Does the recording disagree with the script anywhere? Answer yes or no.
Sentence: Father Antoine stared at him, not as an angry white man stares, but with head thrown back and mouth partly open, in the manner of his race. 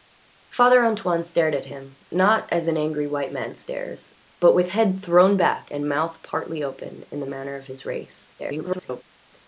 yes